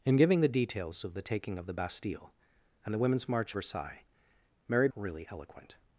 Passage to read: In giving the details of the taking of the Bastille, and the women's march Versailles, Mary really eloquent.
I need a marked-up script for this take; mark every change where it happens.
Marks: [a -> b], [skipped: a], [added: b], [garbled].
In giving the details of the taking of the Bastille, and the women's march Versailles, Mary really eloquent.